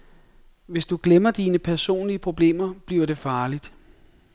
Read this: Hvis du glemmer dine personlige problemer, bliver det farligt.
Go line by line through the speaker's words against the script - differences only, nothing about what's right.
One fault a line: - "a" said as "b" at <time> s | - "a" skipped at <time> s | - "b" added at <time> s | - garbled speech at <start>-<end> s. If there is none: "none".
none